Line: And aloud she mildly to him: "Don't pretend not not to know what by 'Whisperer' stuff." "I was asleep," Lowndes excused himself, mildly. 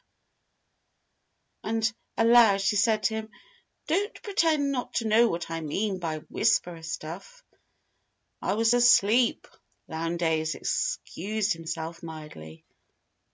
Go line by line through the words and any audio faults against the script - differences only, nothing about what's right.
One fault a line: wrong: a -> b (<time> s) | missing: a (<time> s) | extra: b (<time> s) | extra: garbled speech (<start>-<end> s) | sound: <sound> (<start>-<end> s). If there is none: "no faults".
wrong: mildly -> said (2.8 s)
missing: not (5.0 s)
extra: I mean (5.5 s)